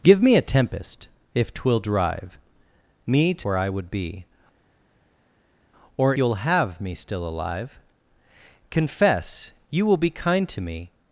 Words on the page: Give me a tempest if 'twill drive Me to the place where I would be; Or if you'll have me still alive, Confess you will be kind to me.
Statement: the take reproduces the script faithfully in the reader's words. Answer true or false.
false